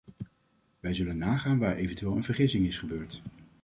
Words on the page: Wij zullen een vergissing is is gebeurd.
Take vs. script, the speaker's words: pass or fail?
fail